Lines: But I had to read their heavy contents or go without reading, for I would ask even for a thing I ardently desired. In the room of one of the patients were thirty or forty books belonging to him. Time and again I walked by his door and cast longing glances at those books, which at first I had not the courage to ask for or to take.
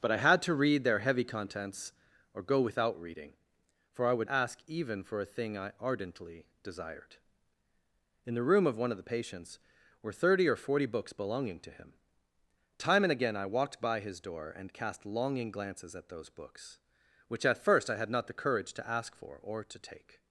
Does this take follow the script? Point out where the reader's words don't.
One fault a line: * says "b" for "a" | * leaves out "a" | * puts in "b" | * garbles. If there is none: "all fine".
all fine